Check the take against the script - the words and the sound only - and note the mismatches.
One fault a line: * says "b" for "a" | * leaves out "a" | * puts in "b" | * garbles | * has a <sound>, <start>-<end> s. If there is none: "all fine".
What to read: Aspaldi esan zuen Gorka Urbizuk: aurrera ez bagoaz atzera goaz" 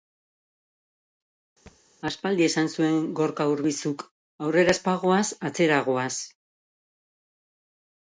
* has a thud, 1.7-1.8 s